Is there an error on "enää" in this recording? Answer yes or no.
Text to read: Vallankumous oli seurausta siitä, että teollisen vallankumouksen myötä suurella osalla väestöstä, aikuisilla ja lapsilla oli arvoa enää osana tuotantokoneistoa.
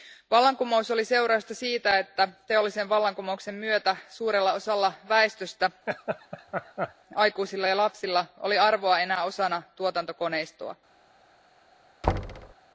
no